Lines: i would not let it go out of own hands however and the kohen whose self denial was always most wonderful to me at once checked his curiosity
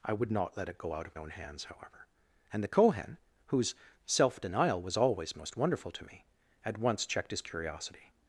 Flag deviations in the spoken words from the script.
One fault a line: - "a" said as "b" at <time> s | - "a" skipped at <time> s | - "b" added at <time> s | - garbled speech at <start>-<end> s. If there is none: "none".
none